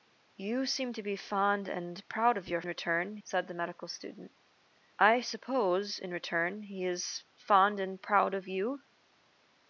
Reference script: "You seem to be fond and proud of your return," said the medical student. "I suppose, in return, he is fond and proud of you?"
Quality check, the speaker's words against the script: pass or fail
pass